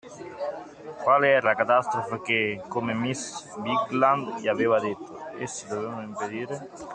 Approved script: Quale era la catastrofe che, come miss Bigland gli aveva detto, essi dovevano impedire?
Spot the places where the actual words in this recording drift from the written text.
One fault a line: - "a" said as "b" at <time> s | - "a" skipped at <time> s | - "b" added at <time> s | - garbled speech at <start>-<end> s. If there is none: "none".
none